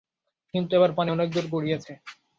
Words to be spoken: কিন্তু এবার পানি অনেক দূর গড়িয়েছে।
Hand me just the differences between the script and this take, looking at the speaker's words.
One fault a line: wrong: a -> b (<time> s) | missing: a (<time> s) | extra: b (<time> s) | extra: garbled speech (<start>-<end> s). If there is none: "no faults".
no faults